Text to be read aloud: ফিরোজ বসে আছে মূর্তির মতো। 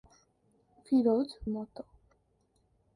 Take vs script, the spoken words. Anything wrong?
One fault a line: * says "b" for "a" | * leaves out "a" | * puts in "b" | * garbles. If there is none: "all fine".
* leaves out "বসে আছে মূর্তির"